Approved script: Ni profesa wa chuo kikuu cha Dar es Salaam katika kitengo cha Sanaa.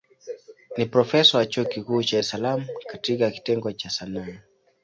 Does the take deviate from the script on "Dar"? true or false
true